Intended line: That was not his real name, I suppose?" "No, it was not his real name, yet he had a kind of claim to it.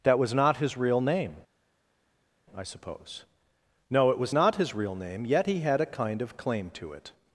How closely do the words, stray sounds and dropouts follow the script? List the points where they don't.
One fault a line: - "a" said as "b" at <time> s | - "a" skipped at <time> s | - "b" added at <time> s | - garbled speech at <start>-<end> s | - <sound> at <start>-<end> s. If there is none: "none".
none